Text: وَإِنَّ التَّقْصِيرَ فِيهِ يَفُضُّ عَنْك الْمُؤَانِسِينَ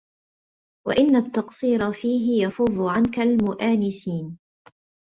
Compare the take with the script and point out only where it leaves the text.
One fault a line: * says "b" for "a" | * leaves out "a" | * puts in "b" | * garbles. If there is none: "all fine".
all fine